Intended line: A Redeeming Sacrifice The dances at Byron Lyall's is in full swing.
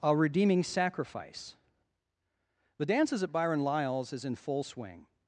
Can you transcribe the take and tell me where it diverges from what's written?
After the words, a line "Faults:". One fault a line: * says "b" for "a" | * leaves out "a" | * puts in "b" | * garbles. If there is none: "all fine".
A Redeeming Sacrifice The dances at Byron Lyall's is in full swing.
Faults:
all fine